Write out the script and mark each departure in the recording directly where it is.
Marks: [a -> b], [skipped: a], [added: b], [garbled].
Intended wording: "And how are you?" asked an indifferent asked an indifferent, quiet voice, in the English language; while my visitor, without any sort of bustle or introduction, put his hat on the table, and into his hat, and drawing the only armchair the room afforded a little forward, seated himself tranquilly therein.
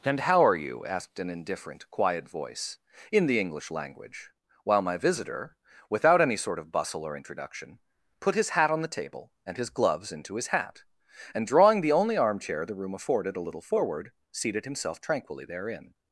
"And how are you?" asked an indifferent [skipped: asked an indifferent,] quiet voice, in the English language; while my visitor, without any sort of bustle or introduction, put his hat on the table, and [added: his gloves] into his hat, and drawing the only armchair the room afforded a little forward, seated himself tranquilly therein.